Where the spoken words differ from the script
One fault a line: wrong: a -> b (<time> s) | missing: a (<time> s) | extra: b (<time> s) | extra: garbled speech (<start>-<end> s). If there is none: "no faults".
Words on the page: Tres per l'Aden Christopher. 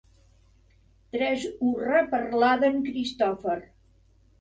extra: hurra (1.7 s)